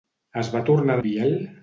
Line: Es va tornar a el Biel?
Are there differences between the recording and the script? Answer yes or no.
no